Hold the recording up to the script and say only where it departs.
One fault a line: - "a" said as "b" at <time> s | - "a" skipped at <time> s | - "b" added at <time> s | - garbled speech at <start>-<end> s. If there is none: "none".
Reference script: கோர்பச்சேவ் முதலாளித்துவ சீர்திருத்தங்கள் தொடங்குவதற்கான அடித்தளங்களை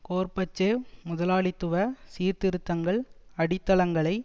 - "தொடங்குவதற்கான" skipped at 3.0 s